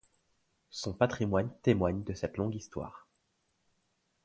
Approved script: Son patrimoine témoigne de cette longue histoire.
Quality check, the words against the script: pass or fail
pass